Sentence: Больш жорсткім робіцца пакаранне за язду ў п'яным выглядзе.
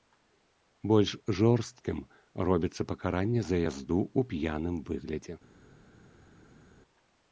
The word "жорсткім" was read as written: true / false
true